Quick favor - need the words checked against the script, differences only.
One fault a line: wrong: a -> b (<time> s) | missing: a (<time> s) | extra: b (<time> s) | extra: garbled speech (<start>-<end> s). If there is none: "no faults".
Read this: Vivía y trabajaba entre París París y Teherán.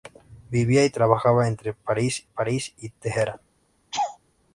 no faults